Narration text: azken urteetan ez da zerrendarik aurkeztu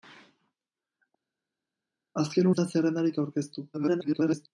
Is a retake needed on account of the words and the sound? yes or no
yes